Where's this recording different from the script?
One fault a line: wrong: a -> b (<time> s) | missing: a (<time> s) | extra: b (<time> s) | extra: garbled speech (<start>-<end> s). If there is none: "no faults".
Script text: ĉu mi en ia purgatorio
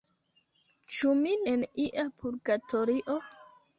no faults